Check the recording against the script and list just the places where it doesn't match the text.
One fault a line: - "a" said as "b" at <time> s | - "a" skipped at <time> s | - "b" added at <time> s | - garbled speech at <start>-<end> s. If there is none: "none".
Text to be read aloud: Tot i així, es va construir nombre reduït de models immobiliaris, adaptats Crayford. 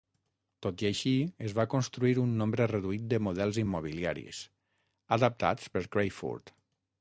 - "un" added at 2.2 s
- "per" added at 5.7 s